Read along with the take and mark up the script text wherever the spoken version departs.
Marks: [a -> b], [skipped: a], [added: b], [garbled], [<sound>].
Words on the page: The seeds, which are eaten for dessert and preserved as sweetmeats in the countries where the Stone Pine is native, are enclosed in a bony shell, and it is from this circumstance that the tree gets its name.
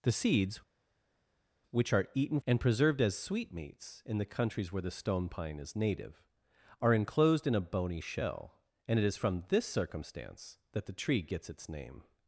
The seeds, which are eaten [skipped: for dessert] and preserved as sweetmeats in the countries where the Stone Pine is native, are enclosed in a bony shell, and it is from this circumstance that the tree gets its name.